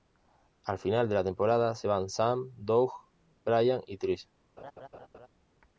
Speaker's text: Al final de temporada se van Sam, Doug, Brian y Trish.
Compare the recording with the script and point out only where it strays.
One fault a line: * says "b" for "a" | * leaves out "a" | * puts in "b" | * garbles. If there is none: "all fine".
* puts in "la"